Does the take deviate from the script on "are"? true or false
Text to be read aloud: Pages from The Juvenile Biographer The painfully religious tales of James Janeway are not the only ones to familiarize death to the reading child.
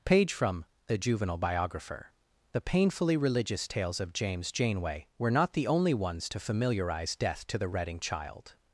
true